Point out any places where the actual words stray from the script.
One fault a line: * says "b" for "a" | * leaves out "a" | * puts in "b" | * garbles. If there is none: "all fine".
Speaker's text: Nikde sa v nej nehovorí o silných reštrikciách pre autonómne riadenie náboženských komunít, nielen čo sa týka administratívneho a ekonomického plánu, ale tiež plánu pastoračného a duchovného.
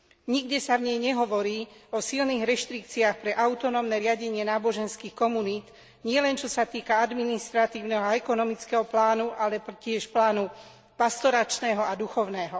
all fine